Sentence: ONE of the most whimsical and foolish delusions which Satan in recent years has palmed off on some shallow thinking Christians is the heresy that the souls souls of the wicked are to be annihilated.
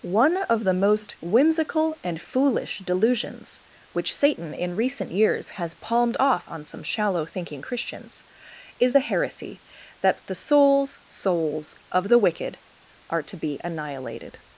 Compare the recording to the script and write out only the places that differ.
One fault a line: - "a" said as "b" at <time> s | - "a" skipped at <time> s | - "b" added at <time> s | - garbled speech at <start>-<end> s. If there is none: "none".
none